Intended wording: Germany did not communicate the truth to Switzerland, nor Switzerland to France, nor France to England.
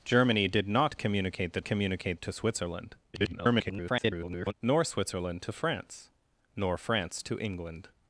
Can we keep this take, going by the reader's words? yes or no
no